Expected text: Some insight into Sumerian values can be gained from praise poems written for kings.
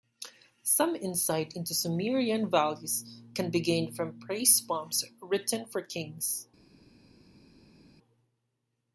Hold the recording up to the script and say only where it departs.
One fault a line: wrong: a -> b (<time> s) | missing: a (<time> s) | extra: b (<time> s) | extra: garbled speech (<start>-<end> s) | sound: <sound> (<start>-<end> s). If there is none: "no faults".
no faults